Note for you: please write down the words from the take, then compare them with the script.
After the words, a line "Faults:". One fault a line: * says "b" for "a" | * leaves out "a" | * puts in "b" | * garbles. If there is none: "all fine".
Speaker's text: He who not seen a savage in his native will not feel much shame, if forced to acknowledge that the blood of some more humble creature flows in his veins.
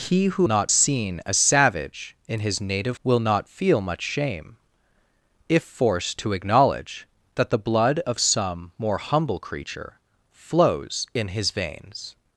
He who not seen a savage in his native will not feel much shame, if forced to acknowledge that the blood of some more humble creature flows in his veins.
Faults:
all fine